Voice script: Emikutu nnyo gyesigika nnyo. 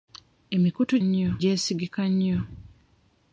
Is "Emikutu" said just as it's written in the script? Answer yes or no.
yes